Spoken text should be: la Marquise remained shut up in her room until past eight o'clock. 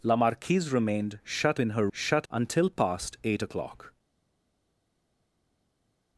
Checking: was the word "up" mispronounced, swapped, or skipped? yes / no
yes